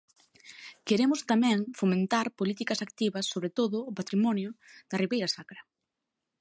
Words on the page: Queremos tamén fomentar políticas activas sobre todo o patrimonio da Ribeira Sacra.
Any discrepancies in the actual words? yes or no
no